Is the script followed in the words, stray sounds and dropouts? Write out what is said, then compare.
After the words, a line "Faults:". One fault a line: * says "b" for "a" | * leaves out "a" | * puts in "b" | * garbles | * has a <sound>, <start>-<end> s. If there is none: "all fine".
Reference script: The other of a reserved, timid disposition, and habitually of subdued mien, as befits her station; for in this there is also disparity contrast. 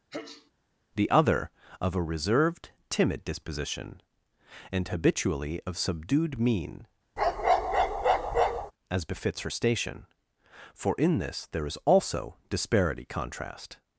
The other of a reserved, timid disposition, and habitually of subdued mien, as befits her station; for in this there is also disparity contrast.
Faults:
* has a sneeze, 0.1-0.5 s
* has a bark, 7.2-8.7 s